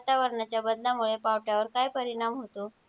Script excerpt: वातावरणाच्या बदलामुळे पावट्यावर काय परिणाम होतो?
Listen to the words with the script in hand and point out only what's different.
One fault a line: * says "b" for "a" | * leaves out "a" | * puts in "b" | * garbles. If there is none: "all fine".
all fine